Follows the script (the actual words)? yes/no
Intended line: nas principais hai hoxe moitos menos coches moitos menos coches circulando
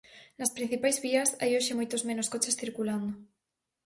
no